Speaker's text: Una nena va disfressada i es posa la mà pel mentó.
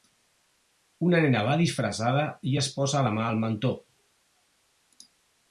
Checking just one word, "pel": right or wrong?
wrong